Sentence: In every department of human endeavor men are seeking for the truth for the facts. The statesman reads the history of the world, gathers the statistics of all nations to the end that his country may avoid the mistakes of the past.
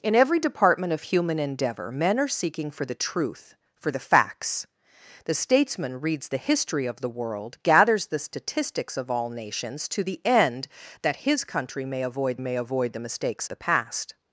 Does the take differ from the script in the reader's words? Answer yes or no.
yes